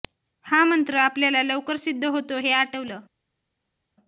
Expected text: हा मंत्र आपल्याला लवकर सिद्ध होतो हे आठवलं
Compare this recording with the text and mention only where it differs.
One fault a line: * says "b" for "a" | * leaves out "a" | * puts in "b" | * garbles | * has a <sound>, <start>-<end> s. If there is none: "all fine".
all fine